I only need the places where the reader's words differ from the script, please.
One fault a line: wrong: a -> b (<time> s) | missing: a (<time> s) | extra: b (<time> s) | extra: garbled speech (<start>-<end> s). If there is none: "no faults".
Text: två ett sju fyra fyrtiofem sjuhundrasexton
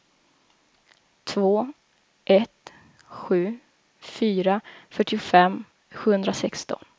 no faults